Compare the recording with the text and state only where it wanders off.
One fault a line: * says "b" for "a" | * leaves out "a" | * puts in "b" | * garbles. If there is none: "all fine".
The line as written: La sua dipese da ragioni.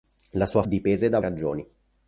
all fine